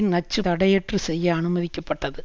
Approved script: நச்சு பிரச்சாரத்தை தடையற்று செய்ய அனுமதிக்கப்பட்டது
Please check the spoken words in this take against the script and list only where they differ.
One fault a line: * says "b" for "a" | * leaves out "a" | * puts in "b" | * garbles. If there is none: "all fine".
* leaves out "பிரச்சாரத்தை"